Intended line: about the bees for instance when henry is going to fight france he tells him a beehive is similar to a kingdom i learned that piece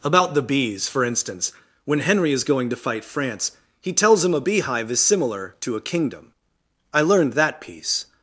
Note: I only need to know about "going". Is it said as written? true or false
true